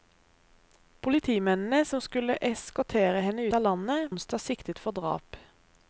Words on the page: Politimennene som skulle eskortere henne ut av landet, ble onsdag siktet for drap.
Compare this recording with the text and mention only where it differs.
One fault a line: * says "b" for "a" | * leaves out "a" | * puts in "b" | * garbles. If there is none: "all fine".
* leaves out "ut"
* leaves out "ble"